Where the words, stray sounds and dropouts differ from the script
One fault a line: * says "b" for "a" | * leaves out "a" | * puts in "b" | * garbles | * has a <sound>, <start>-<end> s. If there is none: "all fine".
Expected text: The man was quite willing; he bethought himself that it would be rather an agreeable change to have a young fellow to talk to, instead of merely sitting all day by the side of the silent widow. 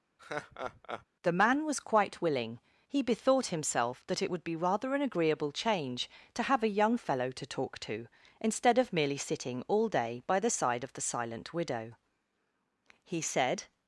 * has a laugh, 0.2-1.1 s
* puts in "He said"